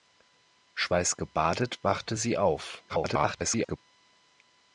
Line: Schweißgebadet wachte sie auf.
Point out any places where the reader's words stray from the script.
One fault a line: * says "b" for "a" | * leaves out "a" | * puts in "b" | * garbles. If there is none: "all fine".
* garbles